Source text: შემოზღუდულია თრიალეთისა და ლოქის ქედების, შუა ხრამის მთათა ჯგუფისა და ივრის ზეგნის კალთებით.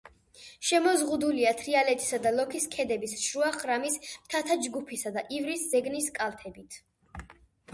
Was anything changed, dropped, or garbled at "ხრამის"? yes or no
no